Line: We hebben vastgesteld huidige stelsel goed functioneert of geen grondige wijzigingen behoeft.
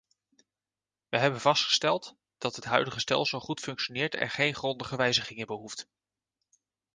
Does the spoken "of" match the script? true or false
false